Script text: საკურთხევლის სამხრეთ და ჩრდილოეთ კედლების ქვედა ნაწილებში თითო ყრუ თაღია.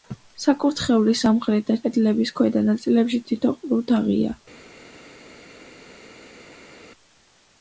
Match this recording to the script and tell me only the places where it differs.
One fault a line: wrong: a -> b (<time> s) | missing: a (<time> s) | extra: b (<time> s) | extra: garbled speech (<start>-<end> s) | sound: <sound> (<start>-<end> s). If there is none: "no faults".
missing: ჩრდილოეთ (1.8 s)